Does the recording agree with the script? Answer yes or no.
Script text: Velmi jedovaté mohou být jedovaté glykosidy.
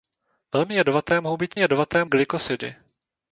yes